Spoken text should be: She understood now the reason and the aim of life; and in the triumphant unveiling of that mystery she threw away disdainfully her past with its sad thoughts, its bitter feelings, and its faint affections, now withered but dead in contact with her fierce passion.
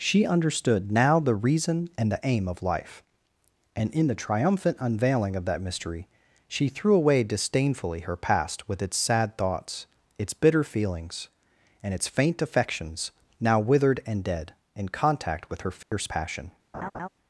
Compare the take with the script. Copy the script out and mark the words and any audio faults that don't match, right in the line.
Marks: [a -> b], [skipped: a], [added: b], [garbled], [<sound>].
She understood now the reason and the aim of life; and in the triumphant unveiling of that mystery she threw away disdainfully her past with its sad thoughts, its bitter feelings, and its faint affections, now withered [but -> and] dead in contact with her fierce [dropout] passion. [laugh]